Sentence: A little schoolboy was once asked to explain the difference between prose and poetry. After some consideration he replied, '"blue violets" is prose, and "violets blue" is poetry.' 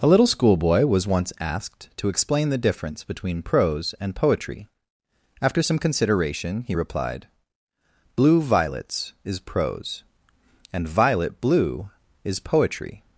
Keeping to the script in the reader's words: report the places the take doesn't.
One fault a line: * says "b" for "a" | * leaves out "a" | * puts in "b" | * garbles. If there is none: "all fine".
* says "violet" for "violets"